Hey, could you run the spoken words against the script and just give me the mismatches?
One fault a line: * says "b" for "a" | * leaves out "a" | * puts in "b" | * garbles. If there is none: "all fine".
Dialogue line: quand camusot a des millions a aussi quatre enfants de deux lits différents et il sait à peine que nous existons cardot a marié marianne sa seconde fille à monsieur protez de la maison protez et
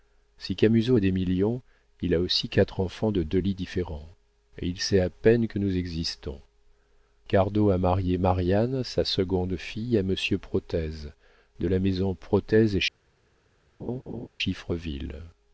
* says "si" for "quand"
* puts in "il"